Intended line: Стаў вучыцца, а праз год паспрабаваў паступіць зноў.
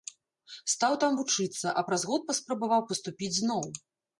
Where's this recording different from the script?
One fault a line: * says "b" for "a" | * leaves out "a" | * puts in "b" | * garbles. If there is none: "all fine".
* puts in "там"